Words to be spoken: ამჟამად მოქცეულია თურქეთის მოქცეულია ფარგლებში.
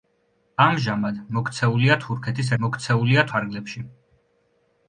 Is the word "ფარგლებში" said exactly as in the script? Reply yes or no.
yes